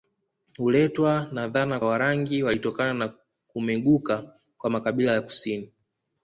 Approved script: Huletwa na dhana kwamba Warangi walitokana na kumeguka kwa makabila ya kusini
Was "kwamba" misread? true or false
true